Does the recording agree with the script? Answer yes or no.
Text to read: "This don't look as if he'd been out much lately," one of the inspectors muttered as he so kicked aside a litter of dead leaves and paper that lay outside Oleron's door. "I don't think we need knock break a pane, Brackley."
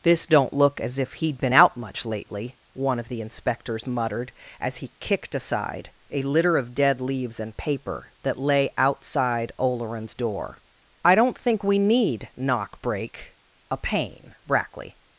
no